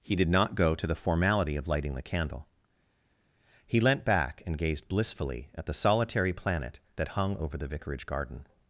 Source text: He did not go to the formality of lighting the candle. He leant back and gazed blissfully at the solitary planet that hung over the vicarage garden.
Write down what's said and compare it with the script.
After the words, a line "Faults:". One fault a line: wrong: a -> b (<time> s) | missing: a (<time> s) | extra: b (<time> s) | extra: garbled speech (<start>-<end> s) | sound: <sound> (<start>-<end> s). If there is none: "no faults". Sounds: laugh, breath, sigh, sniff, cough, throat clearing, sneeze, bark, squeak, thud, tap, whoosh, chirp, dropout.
He did not go to the formality of lighting the candle. He leant back and gazed blissfully at the solitary planet that hung over the vicarage garden.
Faults:
no faults